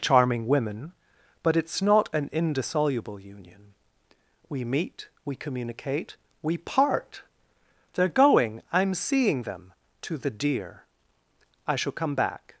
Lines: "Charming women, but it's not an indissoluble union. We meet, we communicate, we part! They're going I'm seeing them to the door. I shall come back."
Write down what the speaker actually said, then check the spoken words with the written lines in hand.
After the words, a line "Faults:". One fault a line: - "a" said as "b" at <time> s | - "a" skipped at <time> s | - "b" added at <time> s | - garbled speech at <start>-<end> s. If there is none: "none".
"Charming women, but it's not an indissoluble union. We meet, we communicate, we part! They're going I'm seeing them to the deer. I shall come back."
Faults:
- "door" said as "deer" at 10.3 s